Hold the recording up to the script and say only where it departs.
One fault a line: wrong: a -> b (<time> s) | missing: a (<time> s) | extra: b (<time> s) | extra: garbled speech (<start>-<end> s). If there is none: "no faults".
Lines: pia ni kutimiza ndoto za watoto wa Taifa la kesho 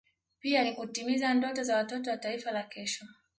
no faults